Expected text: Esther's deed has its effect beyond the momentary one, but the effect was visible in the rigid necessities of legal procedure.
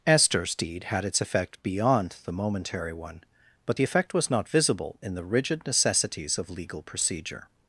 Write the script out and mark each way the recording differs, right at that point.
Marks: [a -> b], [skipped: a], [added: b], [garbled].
Esther's deed [has -> had] its effect beyond the momentary one, but the effect was [added: not] visible in the rigid necessities of legal procedure.